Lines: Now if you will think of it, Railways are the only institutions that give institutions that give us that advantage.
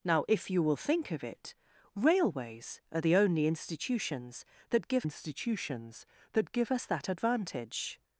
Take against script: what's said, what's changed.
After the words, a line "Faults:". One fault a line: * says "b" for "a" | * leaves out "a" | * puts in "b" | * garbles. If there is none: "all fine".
Now if you will think of it, Railways are the only institutions that give institutions that give us that advantage.
Faults:
all fine